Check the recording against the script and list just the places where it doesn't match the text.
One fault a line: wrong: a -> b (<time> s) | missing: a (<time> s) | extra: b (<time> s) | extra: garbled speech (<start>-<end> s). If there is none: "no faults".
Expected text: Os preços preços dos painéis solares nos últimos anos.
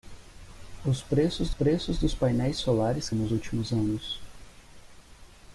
no faults